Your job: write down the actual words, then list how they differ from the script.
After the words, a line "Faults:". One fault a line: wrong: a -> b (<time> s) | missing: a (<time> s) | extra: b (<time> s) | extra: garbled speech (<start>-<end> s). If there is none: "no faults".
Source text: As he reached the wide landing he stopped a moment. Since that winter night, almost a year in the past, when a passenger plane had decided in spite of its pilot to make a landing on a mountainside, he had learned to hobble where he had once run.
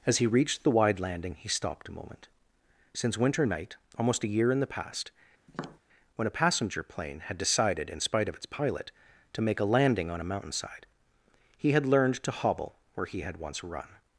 As he reached the wide landing he stopped a moment. Since winter night, almost a year in the past, when a passenger plane had decided in spite of its pilot to make a landing on a mountainside, he had learned to hobble where he had once run.
Faults:
missing: that (3.2 s)